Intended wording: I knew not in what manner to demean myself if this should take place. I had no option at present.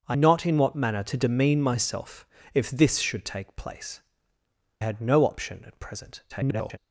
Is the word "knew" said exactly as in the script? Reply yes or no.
no